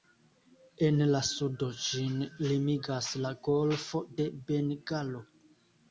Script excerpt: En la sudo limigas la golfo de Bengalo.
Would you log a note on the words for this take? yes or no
yes